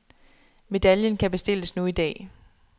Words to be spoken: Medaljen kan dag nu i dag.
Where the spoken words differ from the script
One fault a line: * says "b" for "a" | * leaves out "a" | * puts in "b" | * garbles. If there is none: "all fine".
* says "bestilles" for "dag"